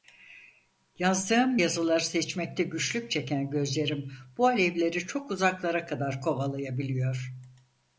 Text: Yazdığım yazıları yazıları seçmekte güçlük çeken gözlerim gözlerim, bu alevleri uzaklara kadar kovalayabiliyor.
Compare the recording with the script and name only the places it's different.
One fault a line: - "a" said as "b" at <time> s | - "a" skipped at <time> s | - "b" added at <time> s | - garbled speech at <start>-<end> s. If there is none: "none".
- "yazıları" skipped at 2.0 s
- "gözlerim" skipped at 4.1 s
- "çok" added at 5.1 s